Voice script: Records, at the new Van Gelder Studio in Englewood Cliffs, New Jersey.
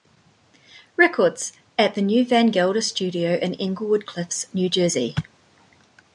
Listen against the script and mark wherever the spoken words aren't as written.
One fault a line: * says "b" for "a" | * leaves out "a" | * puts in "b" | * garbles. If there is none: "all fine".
all fine